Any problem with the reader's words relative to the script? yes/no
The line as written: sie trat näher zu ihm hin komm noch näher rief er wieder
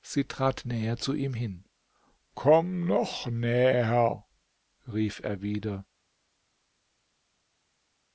no